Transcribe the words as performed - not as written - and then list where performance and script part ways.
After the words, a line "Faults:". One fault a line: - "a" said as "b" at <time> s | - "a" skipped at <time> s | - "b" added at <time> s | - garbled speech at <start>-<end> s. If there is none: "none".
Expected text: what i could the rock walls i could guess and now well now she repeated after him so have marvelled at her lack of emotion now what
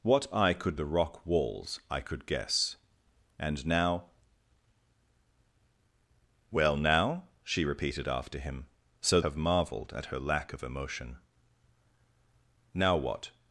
what i could the rock walls i could guess and now well now she repeated after him so have marvelled at her lack of emotion now what
Faults:
none